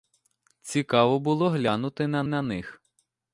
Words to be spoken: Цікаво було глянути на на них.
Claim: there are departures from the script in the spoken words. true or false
false